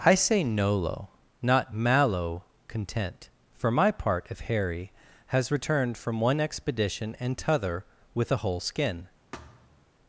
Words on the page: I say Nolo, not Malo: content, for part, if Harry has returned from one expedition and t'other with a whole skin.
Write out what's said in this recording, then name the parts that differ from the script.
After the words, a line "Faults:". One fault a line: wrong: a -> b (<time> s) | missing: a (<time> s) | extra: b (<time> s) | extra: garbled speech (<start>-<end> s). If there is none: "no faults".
I say Nolo, not Malo: content, for my part, if Harry has returned from one expedition and t'other with a whole skin.
Faults:
extra: my (3.7 s)